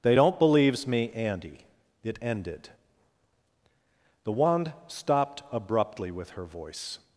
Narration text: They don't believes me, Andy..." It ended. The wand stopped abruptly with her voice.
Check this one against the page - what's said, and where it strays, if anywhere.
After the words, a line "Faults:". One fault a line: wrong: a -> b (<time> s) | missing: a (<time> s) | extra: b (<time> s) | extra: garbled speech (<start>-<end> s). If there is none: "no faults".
They don't believes me, Andy..." It ended. The wand stopped abruptly with her voice.
Faults:
no faults